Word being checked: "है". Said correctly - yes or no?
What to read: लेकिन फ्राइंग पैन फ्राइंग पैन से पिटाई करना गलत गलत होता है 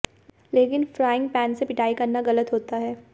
yes